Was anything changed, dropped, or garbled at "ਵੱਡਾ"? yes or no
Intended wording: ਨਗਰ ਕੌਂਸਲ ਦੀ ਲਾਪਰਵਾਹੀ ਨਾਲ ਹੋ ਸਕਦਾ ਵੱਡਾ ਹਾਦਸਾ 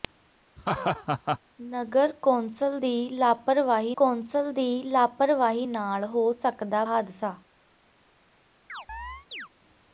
yes